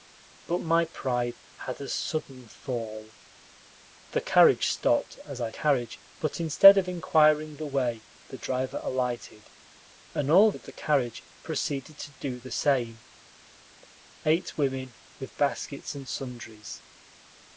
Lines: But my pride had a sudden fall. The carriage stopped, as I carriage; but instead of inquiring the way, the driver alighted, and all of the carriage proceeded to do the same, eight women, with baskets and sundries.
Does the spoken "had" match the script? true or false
true